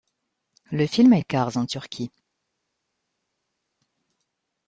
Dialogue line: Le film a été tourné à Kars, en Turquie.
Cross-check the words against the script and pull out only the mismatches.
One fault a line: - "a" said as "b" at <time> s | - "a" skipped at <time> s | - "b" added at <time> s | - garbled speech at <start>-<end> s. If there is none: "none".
- "été tourné" skipped at 1.2 s